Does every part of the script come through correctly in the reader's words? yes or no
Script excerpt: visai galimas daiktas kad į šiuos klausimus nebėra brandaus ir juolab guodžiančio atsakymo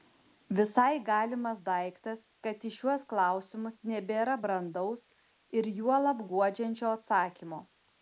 yes